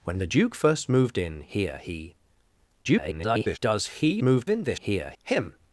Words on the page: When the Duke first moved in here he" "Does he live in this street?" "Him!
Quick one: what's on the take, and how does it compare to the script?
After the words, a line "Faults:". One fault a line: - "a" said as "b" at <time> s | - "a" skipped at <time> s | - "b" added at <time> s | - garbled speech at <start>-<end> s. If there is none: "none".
When the Duke first moved in here he" [garbled] "Does he moved in this here?" "Him!
Faults:
- garbled speech at 2.8-3.6 s
- "live" said as "moved" at 4.2 s
- "street" said as "here" at 4.7 s